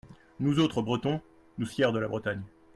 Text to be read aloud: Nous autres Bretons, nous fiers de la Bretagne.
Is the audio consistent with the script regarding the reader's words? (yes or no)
yes